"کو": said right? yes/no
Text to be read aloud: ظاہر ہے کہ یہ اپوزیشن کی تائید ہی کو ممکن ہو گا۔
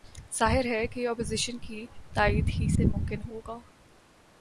no